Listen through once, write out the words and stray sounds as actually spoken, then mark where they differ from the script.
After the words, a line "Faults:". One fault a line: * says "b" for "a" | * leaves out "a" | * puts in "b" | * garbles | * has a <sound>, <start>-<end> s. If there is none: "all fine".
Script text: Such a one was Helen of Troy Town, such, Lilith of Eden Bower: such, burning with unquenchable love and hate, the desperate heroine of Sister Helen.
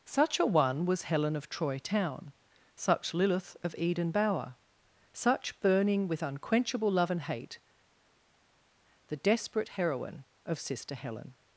Such a one was Helen of Troy Town, such, Lilith of Eden Bower: such, burning with unquenchable love and hate, the desperate heroine of Sister Helen.
Faults:
all fine